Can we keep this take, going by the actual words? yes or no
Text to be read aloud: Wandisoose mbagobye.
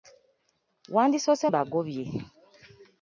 yes